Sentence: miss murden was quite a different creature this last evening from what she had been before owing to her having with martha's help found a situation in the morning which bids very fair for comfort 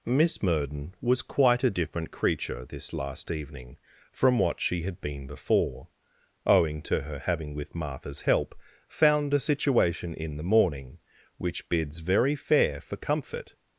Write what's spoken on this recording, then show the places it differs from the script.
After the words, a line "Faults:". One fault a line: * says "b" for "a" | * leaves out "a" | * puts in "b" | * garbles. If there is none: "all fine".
miss murden was quite a different creature this last evening from what she had been before owing to her having with martha's help found a situation in the morning which bids very fair for comfort
Faults:
all fine